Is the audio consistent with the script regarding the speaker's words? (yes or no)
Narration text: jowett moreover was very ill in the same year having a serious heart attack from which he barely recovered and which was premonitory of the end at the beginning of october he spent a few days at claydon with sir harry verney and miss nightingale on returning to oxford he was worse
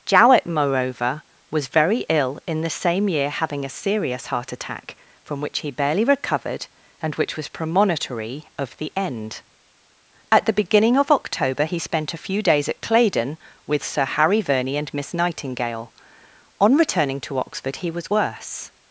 yes